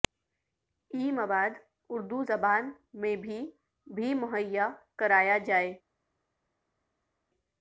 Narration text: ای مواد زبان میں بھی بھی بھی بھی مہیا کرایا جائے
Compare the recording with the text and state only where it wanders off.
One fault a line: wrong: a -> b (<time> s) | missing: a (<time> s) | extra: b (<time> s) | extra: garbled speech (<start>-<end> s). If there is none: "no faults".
extra: اردو (1.9 s)
missing: بھی بھی (4.1 s)